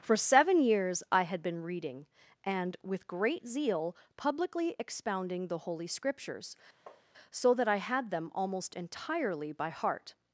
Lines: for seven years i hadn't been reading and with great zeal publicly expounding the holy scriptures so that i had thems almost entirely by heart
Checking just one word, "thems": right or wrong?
wrong